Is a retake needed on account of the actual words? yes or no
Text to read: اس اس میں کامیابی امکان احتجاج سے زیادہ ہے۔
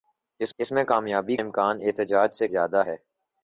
no